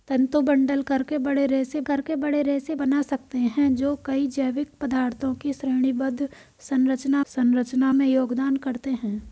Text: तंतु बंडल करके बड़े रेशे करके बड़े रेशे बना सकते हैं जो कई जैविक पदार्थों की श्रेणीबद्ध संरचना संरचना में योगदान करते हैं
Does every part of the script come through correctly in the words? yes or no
yes